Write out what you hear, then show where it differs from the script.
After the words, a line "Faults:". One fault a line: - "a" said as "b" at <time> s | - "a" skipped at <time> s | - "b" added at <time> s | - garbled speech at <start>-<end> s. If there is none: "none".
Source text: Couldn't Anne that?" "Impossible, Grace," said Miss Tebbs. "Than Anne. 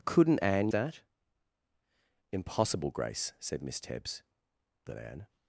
Couldn't Anne that?" "Impossible, Grace," said Miss Tebbs. "Than Anne.
Faults:
none